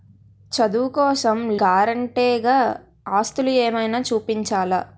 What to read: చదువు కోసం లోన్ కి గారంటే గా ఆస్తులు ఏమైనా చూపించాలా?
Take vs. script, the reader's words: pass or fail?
fail